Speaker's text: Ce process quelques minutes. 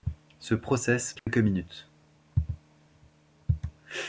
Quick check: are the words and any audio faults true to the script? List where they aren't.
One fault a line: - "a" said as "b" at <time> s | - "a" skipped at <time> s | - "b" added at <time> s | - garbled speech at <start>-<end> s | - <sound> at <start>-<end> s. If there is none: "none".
- dropout at 1.2-1.3 s